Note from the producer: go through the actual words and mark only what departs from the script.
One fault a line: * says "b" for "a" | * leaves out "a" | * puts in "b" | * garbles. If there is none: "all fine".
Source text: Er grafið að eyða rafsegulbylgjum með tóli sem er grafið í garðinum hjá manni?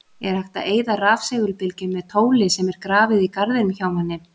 * says "hægt" for "grafið"